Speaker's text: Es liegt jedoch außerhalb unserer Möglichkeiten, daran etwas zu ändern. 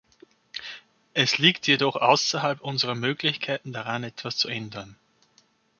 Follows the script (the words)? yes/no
yes